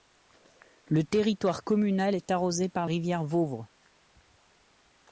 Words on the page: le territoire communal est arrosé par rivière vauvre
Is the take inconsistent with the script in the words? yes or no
no